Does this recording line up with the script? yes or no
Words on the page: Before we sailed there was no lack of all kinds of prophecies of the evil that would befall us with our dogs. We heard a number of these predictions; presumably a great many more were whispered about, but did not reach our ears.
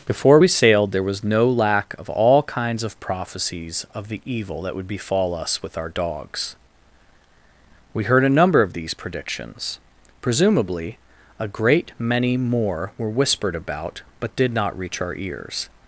yes